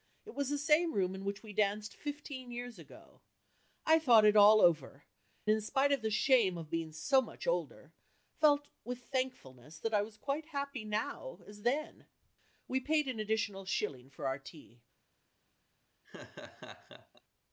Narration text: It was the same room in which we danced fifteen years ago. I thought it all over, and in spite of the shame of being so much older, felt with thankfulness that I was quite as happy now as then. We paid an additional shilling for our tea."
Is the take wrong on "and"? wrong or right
wrong